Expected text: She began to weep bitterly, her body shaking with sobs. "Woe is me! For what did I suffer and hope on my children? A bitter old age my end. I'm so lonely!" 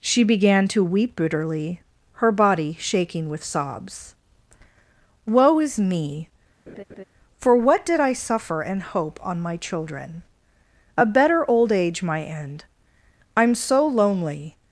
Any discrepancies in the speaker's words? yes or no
yes